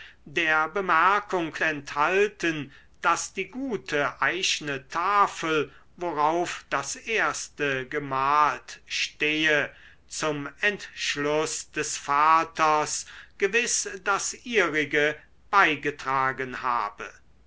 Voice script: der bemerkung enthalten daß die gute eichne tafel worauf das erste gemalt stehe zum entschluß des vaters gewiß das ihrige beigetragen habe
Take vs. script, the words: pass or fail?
pass